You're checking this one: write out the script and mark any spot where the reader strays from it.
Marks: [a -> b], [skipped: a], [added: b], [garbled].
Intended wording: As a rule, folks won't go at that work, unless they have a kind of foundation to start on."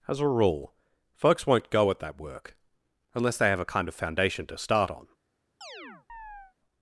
As a rule, folks won't go at that work, unless they have a kind of foundation to start on."